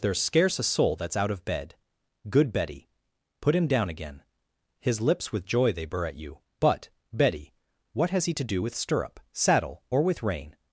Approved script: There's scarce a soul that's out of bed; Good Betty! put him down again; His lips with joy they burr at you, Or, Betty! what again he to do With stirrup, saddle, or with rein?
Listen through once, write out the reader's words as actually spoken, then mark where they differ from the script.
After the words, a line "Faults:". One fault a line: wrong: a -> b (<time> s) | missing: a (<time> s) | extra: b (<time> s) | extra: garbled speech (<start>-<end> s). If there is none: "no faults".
There's scarce a soul that's out of bed; Good Betty! put him down again; His lips with joy they burr at you, But, Betty! what has he to do With stirrup, saddle, or with rein?
Faults:
wrong: Or -> But (6.6 s)
wrong: again -> has (8.1 s)